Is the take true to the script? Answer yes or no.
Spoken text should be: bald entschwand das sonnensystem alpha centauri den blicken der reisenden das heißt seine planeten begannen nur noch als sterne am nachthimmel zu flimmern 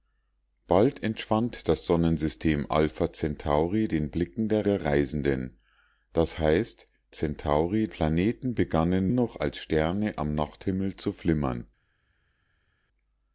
no